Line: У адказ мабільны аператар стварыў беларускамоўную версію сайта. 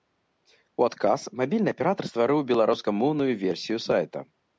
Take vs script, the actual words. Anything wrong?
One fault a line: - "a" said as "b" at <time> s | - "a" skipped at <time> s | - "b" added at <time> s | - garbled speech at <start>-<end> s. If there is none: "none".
none